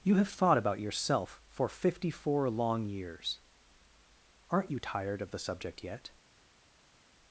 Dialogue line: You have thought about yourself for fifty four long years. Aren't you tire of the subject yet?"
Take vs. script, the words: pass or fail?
fail